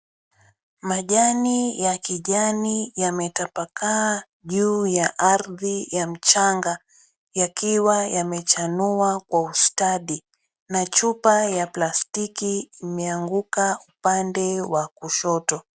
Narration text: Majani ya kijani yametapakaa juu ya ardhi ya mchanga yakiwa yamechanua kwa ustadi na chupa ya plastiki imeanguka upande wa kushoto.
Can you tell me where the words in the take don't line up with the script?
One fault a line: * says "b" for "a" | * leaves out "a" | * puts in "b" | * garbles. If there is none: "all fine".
all fine